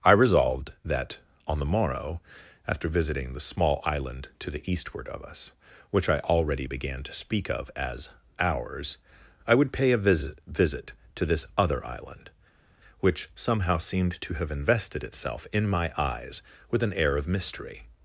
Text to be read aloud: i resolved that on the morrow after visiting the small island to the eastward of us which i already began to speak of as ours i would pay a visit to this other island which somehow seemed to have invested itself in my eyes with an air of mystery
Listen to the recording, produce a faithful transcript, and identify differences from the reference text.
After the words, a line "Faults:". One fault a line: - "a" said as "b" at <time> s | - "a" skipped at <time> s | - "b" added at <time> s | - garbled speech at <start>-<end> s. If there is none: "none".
i resolved that on the morrow after visiting the small island to the eastward of us which i already began to speak of as ours i would pay a visit visit to this other island which somehow seemed to have invested itself in my eyes with an air of mystery
Faults:
- "visit" added at 10.5 s